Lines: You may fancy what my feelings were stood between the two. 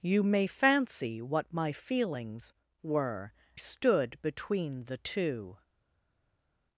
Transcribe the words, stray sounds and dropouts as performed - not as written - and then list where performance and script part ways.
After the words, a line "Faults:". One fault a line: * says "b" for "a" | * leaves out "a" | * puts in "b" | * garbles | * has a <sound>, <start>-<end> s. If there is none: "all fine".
You may fancy what my feelings were stood between the two.
Faults:
all fine